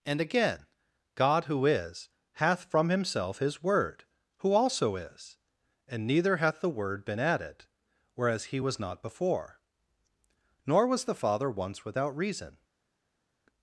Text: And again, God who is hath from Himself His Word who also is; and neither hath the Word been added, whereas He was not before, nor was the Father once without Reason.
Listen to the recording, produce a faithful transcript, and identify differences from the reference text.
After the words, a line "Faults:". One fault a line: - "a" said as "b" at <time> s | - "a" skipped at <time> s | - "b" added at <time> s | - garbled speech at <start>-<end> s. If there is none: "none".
And again, God who is hath from Himself His Word who also is; and neither hath the Word been added, whereas He was not before, nor was the Father once without Reason.
Faults:
none